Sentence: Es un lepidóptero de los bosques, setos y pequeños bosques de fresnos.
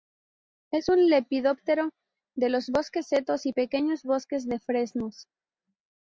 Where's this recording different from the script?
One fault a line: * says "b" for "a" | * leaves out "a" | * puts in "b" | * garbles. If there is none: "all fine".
all fine